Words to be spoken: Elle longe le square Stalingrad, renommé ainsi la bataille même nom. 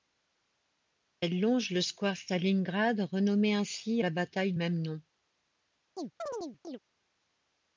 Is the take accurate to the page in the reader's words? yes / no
yes